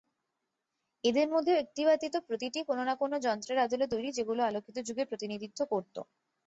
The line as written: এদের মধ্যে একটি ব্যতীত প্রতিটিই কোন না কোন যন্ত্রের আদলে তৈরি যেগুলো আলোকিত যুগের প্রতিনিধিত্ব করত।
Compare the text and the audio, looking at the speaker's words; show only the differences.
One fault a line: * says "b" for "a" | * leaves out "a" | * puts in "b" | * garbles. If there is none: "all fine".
all fine